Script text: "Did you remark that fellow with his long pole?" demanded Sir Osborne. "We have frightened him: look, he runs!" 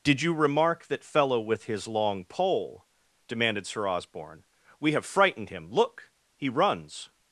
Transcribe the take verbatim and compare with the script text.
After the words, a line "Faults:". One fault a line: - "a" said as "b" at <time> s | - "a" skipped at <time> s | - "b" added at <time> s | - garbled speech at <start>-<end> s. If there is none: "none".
"Did you remark that fellow with his long pole?" demanded Sir Osborne. "We have frightened him: look, he runs!"
Faults:
none